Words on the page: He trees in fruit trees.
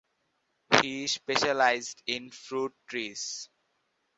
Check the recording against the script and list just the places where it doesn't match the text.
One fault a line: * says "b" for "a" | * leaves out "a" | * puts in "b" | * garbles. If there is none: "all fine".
* says "specialized" for "trees"